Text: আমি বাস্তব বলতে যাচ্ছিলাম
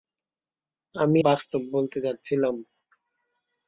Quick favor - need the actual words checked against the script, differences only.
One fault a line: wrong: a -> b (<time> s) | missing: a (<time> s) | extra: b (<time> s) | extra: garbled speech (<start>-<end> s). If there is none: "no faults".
no faults